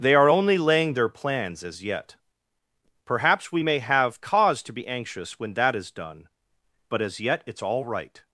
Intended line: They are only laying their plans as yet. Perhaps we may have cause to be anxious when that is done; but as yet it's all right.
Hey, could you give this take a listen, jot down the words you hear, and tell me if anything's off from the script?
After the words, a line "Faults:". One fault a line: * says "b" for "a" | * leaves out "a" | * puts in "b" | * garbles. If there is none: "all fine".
They are only laying their plans as yet. Perhaps we may have cause to be anxious when that is done; but as yet it's all right.
Faults:
all fine